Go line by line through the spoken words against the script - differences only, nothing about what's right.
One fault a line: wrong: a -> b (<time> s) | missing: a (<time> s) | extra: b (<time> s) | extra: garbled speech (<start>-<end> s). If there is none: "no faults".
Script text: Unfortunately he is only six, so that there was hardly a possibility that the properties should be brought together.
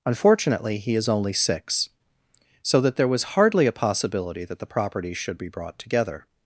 no faults